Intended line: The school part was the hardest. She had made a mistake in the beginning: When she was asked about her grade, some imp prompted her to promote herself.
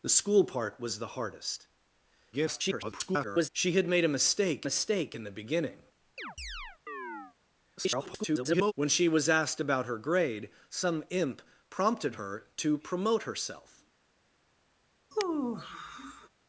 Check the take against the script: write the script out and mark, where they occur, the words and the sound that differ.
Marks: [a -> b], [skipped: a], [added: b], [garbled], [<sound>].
The school part was the hardest. [garbled] She had made a mistake [added: mistake] in the beginning: [chirp] [garbled] When she was asked about her grade, some imp prompted her to promote herself. [sigh]